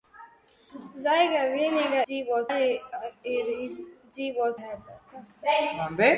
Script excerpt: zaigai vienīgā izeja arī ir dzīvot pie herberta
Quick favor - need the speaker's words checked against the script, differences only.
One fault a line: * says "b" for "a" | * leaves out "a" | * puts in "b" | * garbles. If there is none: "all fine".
* says "dzīvot" for "izeja"
* leaves out "pie"